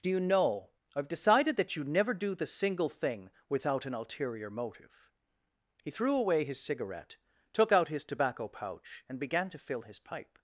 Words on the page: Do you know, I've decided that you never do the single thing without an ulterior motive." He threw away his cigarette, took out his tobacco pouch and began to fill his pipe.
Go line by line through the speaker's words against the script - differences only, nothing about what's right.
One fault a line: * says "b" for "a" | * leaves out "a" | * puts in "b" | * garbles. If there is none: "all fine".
all fine